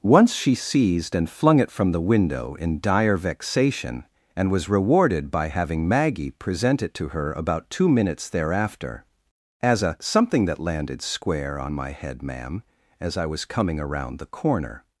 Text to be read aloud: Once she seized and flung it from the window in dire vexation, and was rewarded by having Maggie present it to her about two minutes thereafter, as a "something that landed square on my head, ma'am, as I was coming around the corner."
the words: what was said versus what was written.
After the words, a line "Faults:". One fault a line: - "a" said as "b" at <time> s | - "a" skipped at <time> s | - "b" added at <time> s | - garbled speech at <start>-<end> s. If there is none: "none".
Once she seized and flung it from the window in dire vexation, and was rewarded by having Maggie present it to her about two minutes thereafter, as a "something that landed square on my head, ma'am, as I was coming around the corner."
Faults:
none